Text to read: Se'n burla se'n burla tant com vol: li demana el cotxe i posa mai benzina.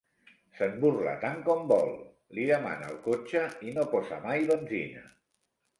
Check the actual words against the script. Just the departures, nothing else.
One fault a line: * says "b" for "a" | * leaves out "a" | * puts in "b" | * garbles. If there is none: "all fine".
* leaves out "se'n burla"
* puts in "no"